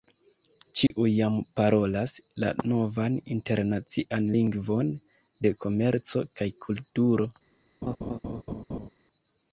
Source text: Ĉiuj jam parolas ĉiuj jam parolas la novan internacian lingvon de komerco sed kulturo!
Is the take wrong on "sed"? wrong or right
wrong